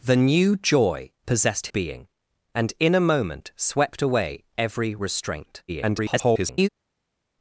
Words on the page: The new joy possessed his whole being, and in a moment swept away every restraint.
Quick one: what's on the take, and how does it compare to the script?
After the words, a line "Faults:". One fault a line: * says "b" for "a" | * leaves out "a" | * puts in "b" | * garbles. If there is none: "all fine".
The new joy possessed being, and in a moment swept away every restraint. [garbled]
Faults:
* leaves out "his whole"
* garbles